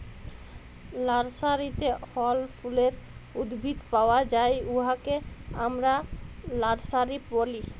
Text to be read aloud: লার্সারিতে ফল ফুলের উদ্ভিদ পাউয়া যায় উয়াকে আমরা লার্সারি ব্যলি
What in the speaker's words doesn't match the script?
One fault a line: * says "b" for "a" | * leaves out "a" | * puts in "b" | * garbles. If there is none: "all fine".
all fine